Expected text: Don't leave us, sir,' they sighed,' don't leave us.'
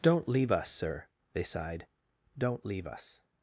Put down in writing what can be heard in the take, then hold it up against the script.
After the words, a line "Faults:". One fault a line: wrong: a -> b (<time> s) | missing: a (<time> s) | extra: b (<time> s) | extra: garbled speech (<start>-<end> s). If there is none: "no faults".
Don't leave us, sir,' they sighed,' don't leave us.'
Faults:
no faults